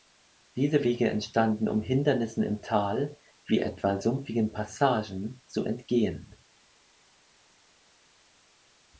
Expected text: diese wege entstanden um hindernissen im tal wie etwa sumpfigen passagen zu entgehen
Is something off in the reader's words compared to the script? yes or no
no